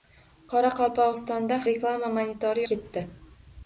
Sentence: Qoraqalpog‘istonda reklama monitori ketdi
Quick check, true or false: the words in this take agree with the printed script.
true